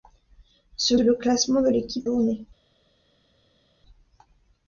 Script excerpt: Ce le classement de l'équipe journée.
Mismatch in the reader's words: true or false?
false